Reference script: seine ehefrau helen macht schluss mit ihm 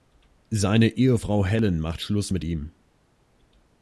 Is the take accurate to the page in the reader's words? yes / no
yes